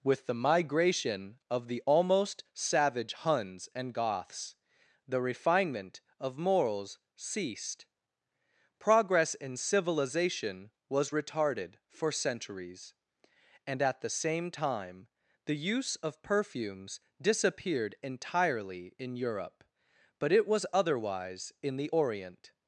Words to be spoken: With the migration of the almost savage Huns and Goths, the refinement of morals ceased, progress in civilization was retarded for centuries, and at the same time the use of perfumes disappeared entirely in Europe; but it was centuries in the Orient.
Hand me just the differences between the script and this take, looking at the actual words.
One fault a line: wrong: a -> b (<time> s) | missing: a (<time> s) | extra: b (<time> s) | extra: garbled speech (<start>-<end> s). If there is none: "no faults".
wrong: centuries -> otherwise (20.7 s)